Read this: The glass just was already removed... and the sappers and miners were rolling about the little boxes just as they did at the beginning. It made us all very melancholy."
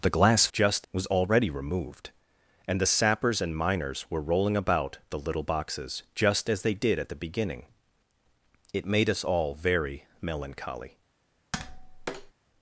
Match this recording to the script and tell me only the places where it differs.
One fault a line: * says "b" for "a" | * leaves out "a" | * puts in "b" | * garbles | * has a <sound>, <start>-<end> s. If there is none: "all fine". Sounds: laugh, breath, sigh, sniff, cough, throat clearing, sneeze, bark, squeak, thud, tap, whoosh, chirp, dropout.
* has a tap, 11.5-12.3 s